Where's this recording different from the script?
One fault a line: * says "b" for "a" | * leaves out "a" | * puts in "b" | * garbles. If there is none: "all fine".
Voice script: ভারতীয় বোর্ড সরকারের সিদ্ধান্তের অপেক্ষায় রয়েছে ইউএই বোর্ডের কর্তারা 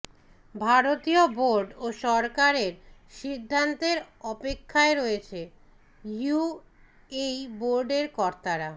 * puts in "ও"